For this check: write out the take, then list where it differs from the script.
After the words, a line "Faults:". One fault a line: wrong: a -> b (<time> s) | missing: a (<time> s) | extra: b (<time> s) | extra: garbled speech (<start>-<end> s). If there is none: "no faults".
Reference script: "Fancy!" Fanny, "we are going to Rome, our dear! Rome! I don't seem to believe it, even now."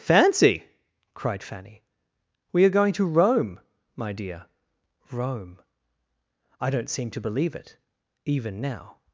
"Fancy!" cried Fanny, "we are going to Rome, my dear! Rome! I don't seem to believe it, even now."
Faults:
extra: cried (1.1 s)
wrong: our -> my (4.0 s)